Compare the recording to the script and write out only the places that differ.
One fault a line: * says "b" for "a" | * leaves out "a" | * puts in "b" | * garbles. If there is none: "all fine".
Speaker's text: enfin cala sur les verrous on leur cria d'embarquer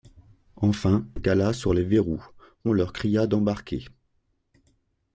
all fine